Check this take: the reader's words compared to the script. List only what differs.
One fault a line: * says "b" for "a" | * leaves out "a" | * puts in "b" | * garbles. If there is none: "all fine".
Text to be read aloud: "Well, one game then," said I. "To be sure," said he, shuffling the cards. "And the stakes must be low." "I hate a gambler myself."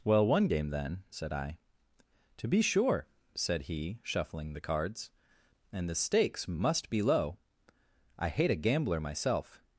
all fine